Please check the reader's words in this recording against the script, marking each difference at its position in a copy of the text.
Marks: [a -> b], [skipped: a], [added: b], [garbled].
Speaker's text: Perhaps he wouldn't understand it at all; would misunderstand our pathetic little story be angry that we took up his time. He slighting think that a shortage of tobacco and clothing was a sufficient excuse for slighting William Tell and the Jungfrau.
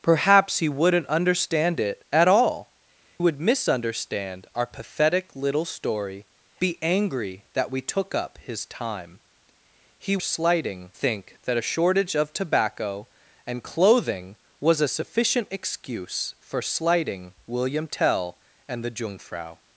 Perhaps he wouldn't understand it at all; would misunderstand our pathetic little story be angry that we took up his time. He slighting think that a shortage of tobacco and clothing was a sufficient excuse for slighting William Tell and the Jungfrau.